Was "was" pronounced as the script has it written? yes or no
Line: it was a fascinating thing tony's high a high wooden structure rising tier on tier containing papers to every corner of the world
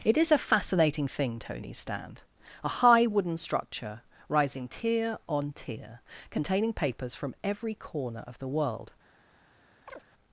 no